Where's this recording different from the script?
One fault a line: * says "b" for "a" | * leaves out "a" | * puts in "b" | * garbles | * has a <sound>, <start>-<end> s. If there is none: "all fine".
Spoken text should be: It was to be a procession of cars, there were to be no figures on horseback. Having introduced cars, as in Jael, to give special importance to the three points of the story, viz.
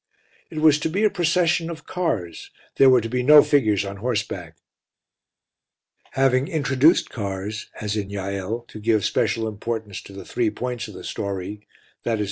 all fine